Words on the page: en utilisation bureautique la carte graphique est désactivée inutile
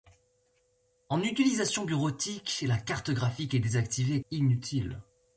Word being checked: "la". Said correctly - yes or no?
yes